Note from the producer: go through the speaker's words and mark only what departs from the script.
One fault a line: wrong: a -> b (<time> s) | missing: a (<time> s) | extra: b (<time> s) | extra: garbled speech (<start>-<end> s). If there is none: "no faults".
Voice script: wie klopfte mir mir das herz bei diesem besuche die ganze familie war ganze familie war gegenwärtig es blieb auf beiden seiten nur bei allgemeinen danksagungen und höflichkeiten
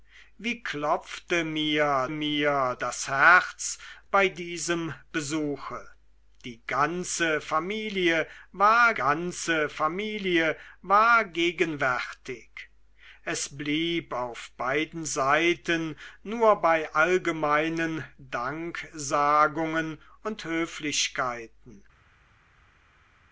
no faults